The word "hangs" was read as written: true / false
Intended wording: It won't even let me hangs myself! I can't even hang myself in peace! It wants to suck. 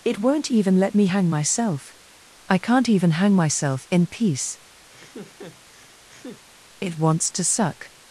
false